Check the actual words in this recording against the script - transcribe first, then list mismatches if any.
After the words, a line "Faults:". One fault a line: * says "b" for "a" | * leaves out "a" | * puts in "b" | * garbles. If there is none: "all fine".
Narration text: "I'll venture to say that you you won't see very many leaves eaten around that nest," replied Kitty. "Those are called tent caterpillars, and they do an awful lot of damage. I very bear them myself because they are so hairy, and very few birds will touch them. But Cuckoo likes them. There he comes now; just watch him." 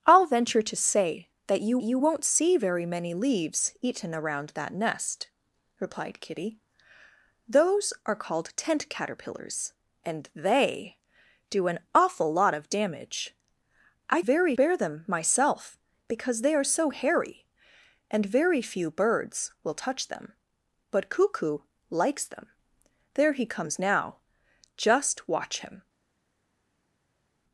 "I'll venture to say that you you won't see very many leaves eaten around that nest," replied Kitty. "Those are called tent caterpillars, and they do an awful lot of damage. I very bear them myself because they are so hairy, and very few birds will touch them. But Cuckoo likes them. There he comes now; just watch him."
Faults:
all fine